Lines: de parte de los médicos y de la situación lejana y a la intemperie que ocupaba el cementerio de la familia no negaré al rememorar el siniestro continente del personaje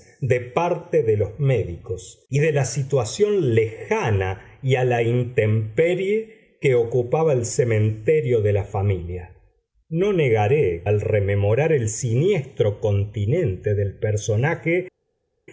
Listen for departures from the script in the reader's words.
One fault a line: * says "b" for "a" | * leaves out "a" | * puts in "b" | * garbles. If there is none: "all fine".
all fine